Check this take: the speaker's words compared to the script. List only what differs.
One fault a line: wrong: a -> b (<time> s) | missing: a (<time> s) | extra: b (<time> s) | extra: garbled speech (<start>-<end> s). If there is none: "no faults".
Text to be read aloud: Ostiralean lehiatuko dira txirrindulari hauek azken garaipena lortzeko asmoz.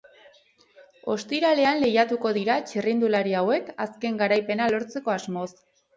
no faults